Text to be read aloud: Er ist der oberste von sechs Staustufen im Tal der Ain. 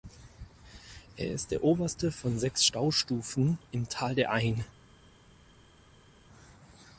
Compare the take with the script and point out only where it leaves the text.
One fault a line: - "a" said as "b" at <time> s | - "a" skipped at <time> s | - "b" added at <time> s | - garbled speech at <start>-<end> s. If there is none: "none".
none